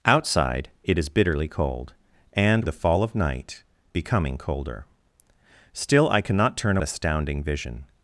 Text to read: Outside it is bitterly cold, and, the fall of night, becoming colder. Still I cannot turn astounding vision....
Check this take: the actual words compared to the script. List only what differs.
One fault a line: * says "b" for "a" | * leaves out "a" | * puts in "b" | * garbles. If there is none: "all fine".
all fine